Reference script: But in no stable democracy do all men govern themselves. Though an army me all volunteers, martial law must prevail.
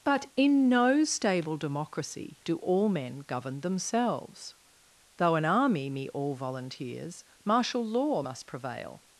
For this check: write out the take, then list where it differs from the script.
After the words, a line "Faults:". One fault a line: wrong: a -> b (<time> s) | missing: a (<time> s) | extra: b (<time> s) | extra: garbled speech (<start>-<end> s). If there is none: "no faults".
But in no stable democracy do all men govern themselves. Though an army me all volunteers, martial law must prevail.
Faults:
no faults